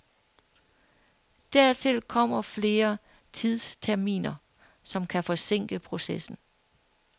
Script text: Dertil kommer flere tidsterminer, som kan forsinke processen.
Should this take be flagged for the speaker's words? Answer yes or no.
no